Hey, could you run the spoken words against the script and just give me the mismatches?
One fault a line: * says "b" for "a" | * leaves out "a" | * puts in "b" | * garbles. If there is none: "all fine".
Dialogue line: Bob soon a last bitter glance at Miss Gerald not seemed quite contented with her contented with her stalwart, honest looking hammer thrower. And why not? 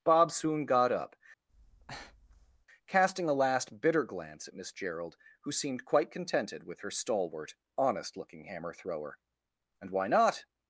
* puts in "got up casting"
* says "who" for "not"
* leaves out "contented with her"